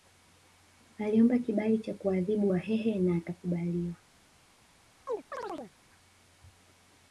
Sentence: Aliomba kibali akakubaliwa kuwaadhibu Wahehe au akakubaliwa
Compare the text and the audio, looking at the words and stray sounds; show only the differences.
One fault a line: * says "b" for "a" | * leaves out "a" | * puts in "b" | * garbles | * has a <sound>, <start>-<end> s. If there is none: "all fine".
* says "cha" for "akakubaliwa"
* says "na" for "au"
* has a chirp, 5.1-5.7 s